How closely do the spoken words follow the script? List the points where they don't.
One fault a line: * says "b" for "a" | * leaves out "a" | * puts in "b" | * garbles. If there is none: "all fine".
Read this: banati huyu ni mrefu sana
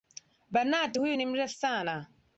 all fine